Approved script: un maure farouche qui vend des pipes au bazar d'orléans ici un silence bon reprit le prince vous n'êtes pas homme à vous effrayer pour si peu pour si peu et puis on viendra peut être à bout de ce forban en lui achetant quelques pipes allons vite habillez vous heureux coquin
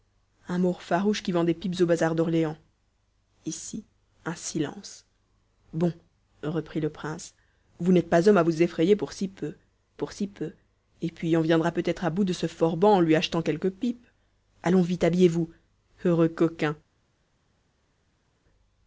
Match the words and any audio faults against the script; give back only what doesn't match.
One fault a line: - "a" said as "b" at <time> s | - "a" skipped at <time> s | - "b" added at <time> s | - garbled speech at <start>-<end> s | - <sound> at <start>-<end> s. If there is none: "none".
none